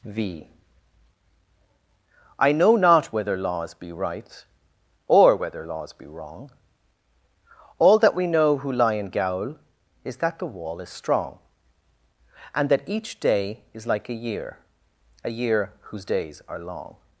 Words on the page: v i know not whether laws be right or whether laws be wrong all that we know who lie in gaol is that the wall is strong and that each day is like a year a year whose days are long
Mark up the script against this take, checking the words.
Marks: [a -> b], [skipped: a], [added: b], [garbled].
v i know not whether laws be right or whether laws be wrong all that we know who lie in gaol is that the wall is strong and that each day is like a year a year whose days are long